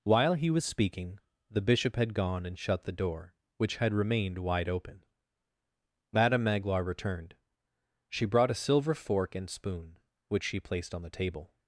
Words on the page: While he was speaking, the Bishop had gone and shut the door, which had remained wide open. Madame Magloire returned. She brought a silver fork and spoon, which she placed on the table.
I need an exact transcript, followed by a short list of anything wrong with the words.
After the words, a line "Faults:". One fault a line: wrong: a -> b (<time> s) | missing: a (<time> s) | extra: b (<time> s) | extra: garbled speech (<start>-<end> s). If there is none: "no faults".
While he was speaking, the Bishop had gone and shut the door, which had remained wide open. Madame Magloire returned. She brought a silver fork and spoon, which she placed on the table.
Faults:
no faults